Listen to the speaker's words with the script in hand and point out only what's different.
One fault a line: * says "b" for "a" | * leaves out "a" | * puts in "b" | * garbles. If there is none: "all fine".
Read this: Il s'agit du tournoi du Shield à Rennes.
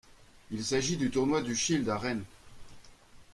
all fine